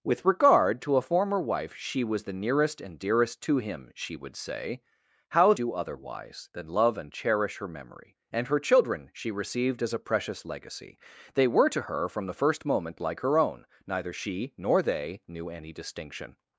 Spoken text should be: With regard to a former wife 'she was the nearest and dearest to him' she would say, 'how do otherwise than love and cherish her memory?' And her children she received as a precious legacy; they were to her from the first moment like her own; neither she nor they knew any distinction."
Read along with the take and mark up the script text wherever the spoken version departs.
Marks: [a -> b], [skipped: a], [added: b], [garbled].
With regard to a former wife 'she was the nearest and dearest to him' she would say, 'how do otherwise than love and cherish her memory?' And her children she received as a precious legacy; they were to her from the first moment like her own; neither she nor they knew any distinction."